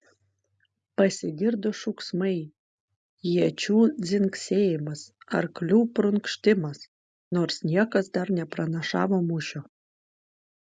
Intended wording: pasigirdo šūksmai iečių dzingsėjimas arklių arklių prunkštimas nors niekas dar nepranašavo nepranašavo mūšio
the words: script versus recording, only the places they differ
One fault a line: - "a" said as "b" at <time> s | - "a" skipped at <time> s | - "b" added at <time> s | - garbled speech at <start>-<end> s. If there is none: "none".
- "arklių" skipped at 5.8 s
- "nepranašavo" skipped at 9.2 s